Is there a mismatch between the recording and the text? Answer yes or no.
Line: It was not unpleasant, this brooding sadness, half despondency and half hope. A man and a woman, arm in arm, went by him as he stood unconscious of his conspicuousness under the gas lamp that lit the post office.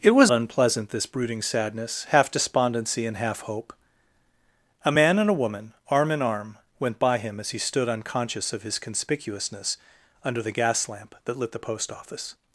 yes